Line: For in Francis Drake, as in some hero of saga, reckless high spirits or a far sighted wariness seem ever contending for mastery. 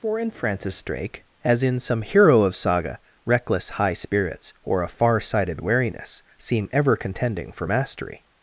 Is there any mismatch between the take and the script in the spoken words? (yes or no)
no